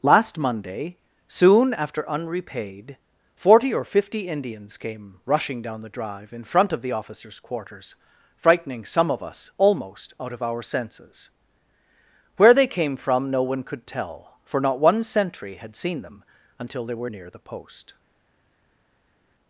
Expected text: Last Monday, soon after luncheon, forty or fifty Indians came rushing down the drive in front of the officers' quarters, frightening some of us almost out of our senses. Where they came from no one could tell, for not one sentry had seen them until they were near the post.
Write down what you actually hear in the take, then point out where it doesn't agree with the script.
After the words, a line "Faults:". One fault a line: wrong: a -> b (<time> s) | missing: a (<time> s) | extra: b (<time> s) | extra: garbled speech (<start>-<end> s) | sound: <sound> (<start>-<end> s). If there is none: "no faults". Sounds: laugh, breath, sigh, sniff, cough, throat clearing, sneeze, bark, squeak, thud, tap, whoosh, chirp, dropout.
Last Monday, soon after unrepaid, forty or fifty Indians came rushing down the drive in front of the officers' quarters, frightening some of us almost out of our senses. Where they came from no one could tell, for not one sentry had seen them until they were near the post.
Faults:
wrong: luncheon -> unrepaid (2.1 s)